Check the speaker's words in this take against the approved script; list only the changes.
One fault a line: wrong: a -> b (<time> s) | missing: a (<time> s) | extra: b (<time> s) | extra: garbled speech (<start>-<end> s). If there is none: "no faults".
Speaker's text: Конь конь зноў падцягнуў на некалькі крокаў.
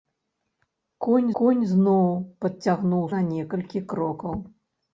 no faults